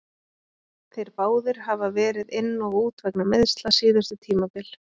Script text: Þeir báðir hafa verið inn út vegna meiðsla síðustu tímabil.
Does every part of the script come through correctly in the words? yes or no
no